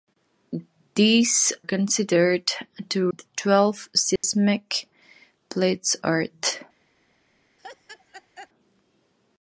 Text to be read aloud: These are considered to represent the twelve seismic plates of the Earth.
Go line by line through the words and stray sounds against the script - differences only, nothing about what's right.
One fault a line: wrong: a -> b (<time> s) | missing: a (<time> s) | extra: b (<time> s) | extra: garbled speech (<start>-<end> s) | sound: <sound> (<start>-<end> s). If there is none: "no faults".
missing: are (1.5 s)
missing: represent (3.1 s)
sound: dropout (4.2-4.2 s)
missing: of the (6.0 s)
sound: laugh (7.6-8.5 s)